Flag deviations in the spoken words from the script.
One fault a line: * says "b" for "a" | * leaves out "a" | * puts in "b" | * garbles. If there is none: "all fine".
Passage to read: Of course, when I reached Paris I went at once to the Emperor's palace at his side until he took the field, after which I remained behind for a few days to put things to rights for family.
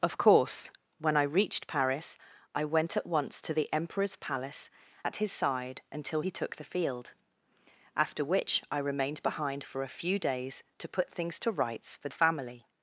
all fine